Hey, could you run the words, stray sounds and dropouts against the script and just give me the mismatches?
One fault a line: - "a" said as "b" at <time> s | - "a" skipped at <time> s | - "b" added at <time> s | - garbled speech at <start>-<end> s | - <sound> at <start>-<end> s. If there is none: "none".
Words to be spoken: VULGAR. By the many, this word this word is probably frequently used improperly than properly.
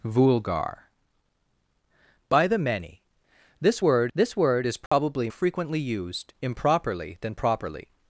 - dropout at 4.9-4.9 s